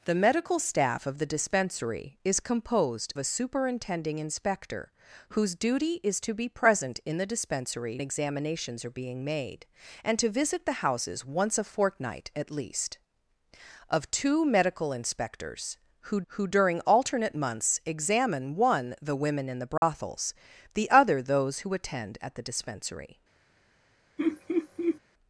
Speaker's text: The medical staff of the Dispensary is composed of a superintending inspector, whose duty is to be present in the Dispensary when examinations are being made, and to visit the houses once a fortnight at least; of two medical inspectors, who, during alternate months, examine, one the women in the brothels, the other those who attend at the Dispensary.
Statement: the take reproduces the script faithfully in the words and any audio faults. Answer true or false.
false